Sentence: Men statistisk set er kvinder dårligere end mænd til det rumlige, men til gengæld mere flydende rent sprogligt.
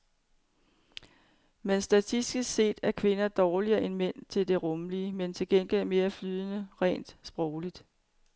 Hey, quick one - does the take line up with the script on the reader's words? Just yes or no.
yes